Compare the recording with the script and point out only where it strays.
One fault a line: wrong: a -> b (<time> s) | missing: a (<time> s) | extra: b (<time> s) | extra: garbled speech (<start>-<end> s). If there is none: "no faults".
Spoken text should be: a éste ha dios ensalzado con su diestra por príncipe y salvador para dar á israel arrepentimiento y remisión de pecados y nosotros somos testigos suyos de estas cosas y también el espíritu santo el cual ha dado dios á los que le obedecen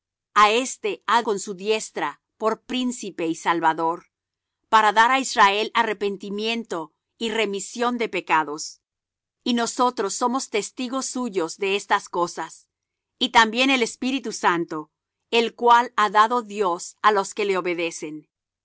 missing: dios ensalzado (1.2 s)